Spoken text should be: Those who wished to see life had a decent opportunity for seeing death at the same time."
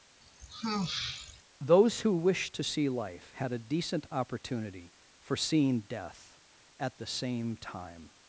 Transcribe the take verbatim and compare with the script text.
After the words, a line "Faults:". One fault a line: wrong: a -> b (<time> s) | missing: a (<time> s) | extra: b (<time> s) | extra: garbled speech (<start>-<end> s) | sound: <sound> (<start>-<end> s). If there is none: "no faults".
Those who wished to see life had a decent opportunity for seeing death at the same time."
Faults:
sound: sigh (0.2-1.4 s)